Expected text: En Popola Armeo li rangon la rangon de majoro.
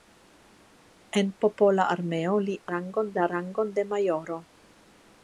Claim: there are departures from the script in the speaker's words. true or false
false